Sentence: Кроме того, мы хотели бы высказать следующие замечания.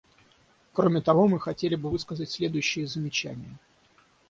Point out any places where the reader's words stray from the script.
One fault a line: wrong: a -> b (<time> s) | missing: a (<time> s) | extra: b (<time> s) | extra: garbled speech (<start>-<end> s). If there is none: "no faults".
no faults